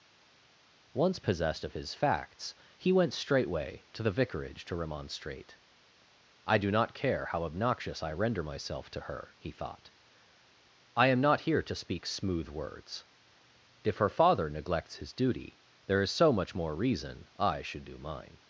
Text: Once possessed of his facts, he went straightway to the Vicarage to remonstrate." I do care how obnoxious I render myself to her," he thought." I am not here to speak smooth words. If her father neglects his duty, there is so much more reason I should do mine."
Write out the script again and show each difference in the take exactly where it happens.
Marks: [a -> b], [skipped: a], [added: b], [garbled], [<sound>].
Once possessed of his facts, he went straightway to the Vicarage to remonstrate." I do [added: not] care how obnoxious I render myself to her," he thought." I am not here to speak smooth words. If her father neglects his duty, there is so much more reason I should do mine."